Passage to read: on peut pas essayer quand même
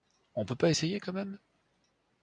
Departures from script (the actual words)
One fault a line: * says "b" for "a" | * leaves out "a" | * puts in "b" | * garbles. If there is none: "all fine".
all fine